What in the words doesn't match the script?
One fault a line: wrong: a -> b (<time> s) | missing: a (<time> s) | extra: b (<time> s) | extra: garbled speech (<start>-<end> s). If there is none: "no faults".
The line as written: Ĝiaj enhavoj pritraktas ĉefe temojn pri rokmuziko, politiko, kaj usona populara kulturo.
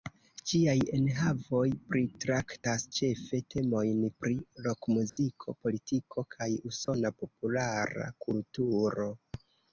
no faults